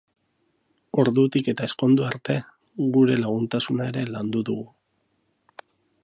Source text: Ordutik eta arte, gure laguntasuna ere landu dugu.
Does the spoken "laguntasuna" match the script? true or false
true